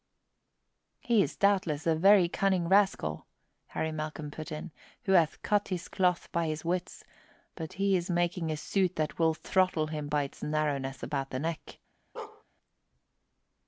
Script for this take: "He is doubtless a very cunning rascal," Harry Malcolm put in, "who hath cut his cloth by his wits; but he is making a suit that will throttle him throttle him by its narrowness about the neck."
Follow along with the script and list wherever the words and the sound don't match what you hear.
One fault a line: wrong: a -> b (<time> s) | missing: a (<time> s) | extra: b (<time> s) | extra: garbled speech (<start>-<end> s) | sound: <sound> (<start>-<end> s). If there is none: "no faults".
missing: throttle him (10.1 s)
sound: bark (12.2-12.4 s)